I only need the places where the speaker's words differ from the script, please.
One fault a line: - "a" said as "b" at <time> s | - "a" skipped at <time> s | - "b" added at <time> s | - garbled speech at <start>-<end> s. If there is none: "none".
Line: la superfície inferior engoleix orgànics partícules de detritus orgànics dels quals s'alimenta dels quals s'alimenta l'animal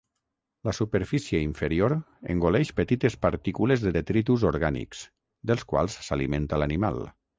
- "orgànics" said as "petites" at 2.8 s
- "dels quals s'alimenta" skipped at 6.6 s